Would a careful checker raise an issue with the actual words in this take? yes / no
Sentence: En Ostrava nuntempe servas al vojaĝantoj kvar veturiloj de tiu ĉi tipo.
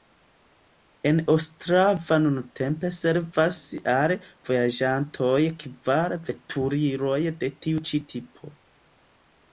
no